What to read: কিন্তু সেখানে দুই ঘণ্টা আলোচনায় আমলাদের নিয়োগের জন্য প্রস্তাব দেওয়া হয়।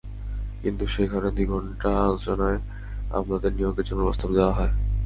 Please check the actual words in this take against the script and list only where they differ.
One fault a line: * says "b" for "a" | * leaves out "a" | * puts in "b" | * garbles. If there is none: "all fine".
all fine